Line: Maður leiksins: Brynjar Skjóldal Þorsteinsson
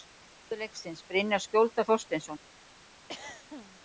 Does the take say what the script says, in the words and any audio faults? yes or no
no